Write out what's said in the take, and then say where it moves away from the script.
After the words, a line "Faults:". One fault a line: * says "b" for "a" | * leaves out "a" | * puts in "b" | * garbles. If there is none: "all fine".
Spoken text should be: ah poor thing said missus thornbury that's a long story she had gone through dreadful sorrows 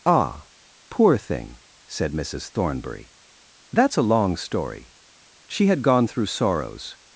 ah poor thing said missus thornbury that's a long story she had gone through sorrows
Faults:
* leaves out "dreadful"